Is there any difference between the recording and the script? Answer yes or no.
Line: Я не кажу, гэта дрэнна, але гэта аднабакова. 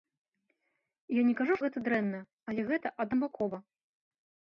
no